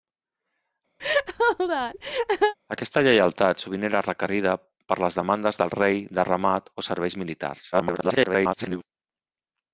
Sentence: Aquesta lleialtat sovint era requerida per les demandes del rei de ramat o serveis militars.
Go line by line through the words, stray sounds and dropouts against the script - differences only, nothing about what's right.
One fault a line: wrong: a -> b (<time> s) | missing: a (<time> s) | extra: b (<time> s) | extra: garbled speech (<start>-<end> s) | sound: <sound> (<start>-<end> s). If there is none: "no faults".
sound: laugh (1.0-2.5 s)
extra: garbled speech (7.7-8.8 s)